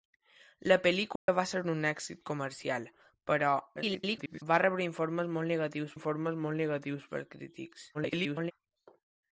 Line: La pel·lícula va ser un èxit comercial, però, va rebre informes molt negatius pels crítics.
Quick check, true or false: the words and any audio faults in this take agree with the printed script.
false